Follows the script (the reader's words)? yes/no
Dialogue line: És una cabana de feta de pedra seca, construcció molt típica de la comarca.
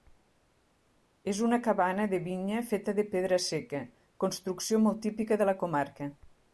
no